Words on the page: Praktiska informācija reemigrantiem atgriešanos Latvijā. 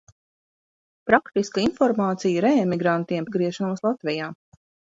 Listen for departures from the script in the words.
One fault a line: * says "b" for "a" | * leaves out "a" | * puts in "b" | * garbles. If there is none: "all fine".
all fine